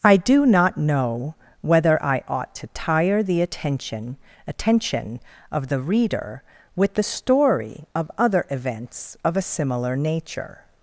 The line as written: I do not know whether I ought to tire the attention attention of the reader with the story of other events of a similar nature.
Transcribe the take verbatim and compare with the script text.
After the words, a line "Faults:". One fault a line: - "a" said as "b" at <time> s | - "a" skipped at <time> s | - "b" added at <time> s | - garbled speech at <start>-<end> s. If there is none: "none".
I do not know whether I ought to tire the attention attention of the reader with the story of other events of a similar nature.
Faults:
none